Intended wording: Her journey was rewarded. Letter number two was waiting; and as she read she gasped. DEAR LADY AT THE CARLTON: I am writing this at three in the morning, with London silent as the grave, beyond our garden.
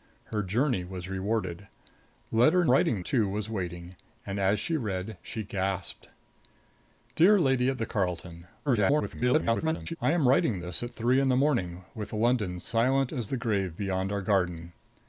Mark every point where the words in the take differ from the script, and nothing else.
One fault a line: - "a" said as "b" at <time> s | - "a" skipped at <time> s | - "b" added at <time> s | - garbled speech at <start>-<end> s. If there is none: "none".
- "number" said as "writing" at 2.7 s
- garbled speech at 8.7-10.0 s